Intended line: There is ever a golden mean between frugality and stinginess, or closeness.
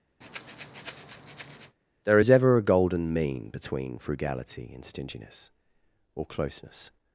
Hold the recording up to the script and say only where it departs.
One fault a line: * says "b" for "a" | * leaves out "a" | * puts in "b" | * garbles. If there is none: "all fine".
all fine